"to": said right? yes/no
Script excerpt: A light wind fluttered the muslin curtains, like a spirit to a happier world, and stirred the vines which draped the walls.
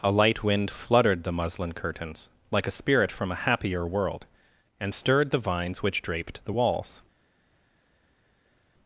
no